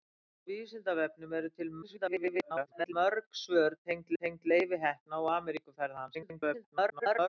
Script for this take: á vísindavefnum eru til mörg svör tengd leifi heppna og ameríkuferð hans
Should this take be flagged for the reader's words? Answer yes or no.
yes